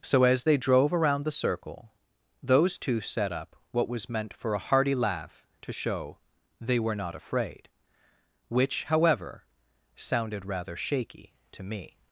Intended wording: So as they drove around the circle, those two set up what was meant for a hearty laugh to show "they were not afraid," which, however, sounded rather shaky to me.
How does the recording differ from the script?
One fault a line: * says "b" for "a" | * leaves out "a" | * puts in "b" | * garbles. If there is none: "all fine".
all fine